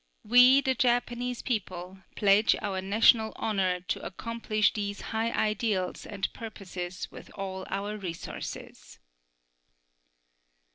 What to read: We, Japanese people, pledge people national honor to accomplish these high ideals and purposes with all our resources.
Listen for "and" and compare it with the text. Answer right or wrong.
right